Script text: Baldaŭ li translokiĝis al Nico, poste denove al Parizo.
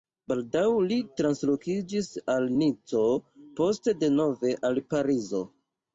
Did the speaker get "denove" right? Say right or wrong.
right